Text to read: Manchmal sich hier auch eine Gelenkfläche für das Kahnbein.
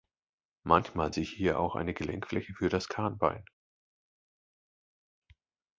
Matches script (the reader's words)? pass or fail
pass